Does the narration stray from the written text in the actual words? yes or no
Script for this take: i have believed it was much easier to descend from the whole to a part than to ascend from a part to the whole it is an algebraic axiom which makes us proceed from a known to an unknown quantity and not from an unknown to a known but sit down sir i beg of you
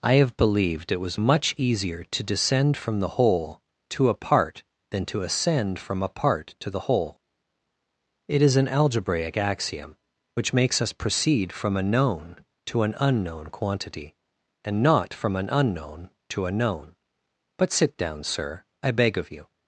no